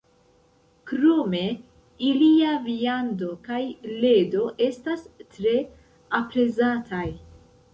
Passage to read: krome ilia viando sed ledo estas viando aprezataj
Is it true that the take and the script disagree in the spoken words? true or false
true